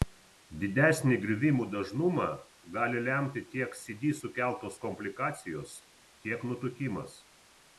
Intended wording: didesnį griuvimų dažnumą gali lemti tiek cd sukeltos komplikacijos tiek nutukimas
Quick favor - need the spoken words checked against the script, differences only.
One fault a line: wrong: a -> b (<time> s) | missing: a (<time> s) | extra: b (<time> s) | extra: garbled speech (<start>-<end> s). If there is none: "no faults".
no faults